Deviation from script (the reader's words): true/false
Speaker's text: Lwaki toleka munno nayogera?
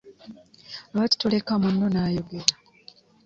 false